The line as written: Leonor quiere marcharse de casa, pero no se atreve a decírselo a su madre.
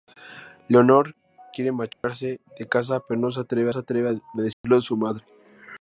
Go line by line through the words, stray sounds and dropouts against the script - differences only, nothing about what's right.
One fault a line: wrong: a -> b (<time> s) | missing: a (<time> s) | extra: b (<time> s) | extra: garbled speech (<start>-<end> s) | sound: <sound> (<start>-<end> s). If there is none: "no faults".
sound: dropout (1.9-2.0 s)
extra: se atreve (3.7 s)
sound: dropout (4.5-4.6 s)